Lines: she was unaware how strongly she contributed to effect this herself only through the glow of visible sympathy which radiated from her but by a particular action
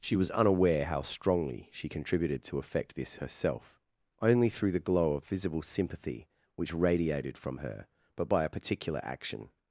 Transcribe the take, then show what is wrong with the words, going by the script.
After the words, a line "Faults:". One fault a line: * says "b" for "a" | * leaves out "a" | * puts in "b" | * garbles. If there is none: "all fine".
she was unaware how strongly she contributed to effect this herself only through the glow of visible sympathy which radiated from her but by a particular action
Faults:
all fine